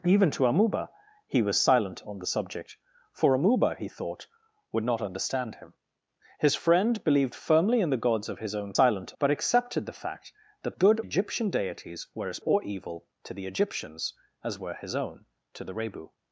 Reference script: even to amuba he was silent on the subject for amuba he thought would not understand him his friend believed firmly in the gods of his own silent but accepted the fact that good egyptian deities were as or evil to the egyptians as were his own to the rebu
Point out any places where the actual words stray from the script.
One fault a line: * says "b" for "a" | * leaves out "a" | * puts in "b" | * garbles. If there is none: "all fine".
all fine